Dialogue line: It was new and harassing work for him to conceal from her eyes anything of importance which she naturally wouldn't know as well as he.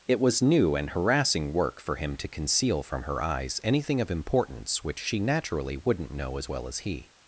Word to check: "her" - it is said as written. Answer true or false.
true